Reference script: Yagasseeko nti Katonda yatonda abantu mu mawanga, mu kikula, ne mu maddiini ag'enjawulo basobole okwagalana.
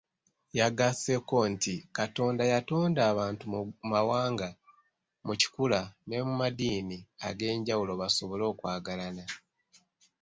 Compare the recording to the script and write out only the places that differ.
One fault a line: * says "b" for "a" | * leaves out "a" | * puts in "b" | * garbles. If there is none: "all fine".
all fine